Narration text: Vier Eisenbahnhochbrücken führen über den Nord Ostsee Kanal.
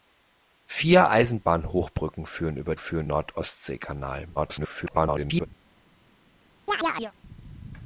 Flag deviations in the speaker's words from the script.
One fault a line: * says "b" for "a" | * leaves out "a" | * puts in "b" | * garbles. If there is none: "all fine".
* says "führen" for "den"
* garbles